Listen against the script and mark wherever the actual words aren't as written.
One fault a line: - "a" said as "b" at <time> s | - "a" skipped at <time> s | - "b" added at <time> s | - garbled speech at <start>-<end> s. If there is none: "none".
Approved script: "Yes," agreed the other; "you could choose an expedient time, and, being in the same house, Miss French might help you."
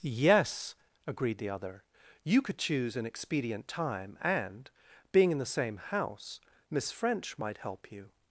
none